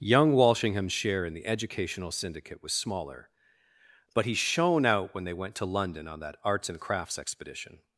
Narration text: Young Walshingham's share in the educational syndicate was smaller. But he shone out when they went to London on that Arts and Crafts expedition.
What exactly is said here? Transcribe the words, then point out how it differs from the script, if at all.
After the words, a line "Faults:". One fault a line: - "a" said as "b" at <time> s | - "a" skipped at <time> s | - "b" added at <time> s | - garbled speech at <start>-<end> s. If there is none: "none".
Young Walshingham's share in the educational syndicate was smaller. But he shone out when they went to London on that Arts and Crafts expedition.
Faults:
none